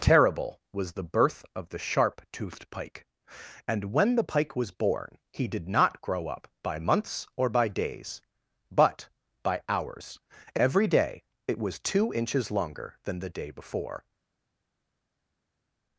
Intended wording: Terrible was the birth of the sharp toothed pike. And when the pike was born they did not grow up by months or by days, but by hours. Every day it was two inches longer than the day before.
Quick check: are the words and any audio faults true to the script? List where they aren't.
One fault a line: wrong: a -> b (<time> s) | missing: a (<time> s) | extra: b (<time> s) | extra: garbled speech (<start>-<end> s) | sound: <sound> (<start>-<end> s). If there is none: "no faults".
wrong: they -> he (5.3 s)